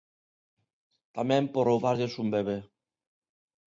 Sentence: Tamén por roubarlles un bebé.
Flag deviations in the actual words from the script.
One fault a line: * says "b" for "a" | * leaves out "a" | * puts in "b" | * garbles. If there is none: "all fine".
all fine